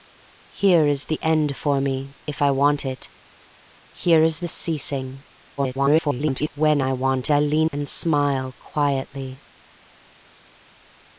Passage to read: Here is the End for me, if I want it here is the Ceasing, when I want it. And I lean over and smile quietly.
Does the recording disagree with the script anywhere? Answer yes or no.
yes